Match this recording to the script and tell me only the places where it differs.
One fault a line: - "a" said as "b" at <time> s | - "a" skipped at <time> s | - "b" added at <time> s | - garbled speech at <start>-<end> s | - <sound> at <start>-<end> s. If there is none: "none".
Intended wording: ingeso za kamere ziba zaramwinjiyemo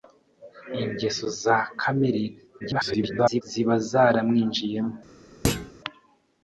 - garbled speech at 2.6-3.4 s
- thud at 5.4-5.7 s